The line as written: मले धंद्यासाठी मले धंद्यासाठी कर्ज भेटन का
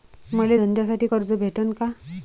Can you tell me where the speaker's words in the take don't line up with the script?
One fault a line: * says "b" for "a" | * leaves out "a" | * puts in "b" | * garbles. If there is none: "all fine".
* leaves out "मले धंद्यासाठी"